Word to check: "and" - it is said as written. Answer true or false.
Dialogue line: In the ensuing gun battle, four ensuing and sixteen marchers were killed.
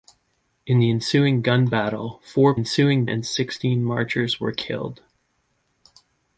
true